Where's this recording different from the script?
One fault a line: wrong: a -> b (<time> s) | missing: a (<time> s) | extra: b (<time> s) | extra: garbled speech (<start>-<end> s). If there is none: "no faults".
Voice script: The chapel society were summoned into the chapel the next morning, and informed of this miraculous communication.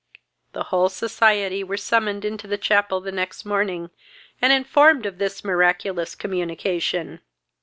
wrong: chapel -> whole (0.6 s)